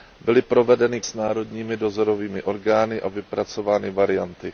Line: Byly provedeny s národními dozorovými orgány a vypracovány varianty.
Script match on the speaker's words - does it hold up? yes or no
yes